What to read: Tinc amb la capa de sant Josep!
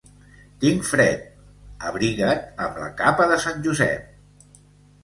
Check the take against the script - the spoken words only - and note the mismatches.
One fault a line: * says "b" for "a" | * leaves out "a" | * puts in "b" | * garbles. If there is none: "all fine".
* puts in "fred Abriga't"